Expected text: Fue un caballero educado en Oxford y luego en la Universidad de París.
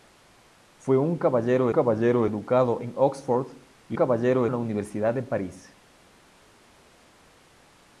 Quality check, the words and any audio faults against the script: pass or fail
fail